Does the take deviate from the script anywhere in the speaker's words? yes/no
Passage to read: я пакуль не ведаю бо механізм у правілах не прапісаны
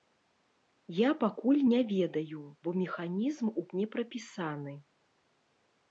yes